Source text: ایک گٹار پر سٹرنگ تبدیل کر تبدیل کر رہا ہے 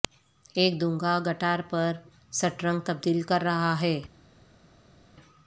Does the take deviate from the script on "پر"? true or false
false